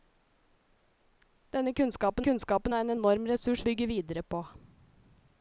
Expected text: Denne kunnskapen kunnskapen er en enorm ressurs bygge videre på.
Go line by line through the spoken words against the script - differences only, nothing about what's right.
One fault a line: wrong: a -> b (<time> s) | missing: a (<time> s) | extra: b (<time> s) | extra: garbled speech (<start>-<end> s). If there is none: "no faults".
no faults